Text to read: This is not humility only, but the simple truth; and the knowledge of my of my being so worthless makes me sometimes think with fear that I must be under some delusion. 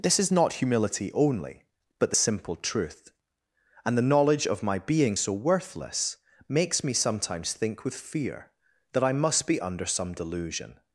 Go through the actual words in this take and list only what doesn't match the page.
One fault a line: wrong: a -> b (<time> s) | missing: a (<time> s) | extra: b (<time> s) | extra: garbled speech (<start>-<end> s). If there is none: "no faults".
missing: of my (4.8 s)